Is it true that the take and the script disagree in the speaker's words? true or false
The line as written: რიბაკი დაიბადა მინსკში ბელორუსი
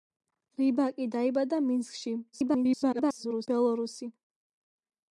true